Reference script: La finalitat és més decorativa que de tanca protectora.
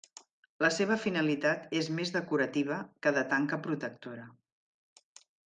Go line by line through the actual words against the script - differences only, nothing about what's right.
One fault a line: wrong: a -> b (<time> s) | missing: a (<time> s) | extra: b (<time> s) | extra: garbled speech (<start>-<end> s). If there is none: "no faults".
extra: seva (0.8 s)